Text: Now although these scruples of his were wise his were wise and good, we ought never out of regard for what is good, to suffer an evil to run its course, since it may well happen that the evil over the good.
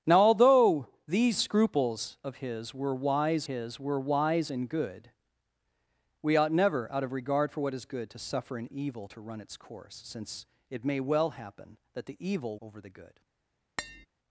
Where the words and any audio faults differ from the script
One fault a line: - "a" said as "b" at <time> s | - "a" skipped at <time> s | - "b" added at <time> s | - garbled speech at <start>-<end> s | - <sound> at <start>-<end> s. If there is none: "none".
- tap at 13.8-14.1 s